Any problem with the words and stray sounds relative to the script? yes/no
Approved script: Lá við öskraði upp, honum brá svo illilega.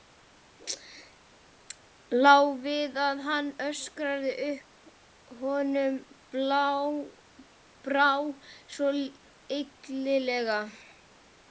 yes